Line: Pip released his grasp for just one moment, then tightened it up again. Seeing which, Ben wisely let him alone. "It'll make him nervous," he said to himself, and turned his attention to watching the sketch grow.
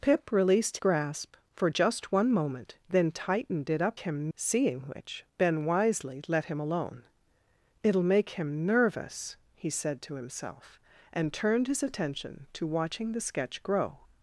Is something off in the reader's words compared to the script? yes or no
yes